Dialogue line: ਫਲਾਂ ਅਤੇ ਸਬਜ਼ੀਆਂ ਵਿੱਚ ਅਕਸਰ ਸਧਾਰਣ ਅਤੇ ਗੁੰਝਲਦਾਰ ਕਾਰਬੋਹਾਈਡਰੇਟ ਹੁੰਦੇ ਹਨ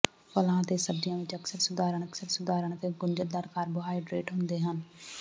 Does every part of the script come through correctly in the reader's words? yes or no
no